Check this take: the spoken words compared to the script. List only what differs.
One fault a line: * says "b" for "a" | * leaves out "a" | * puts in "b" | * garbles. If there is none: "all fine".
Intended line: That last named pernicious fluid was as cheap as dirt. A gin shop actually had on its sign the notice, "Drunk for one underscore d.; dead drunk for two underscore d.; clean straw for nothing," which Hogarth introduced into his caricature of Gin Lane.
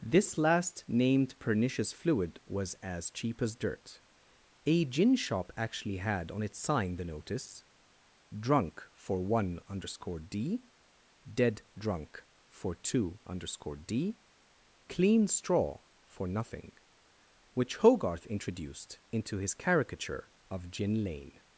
* says "This" for "That"